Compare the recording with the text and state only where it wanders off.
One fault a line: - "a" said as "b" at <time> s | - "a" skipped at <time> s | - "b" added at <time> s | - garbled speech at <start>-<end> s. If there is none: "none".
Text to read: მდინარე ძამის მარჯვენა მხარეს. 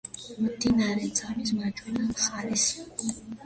none